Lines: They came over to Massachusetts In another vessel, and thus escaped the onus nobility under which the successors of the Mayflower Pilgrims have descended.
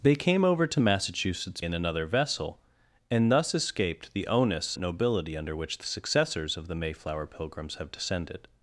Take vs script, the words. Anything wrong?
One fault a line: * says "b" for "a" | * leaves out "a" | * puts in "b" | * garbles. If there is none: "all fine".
all fine